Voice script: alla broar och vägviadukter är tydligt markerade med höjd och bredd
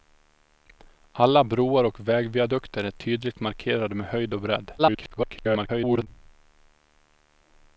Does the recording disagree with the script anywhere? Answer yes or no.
yes